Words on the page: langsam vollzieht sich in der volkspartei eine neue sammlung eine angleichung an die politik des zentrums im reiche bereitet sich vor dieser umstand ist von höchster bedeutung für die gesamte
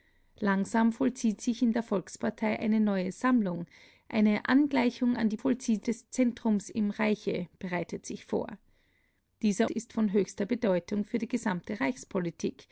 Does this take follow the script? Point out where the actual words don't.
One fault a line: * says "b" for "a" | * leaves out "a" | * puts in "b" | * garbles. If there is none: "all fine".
* says "vollzieht" for "politik"
* leaves out "umstand"